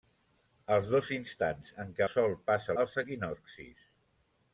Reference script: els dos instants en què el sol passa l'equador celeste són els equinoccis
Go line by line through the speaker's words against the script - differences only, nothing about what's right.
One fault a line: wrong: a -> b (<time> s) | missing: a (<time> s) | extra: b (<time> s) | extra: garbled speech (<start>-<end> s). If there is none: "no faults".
missing: el (2.0 s)
missing: l'equador celeste són (2.7 s)